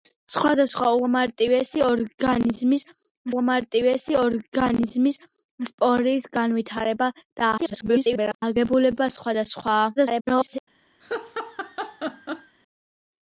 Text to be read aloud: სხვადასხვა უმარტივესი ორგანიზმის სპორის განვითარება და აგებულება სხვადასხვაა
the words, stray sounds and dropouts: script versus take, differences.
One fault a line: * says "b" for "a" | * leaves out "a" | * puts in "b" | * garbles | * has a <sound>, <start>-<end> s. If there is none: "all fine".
* puts in "უმარტივესი ორგანიზმის"
* garbles
* garbles
* has a laugh, 11.0-12.6 s